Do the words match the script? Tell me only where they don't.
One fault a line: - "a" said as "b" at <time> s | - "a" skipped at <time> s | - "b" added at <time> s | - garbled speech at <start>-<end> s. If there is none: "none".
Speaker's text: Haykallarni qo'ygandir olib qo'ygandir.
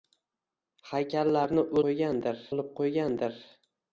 none